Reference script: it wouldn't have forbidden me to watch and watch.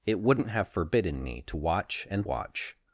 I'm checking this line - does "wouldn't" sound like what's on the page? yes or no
yes